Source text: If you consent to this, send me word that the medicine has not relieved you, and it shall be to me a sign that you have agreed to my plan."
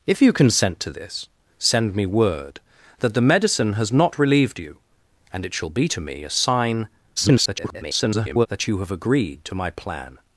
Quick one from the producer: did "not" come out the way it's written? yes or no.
yes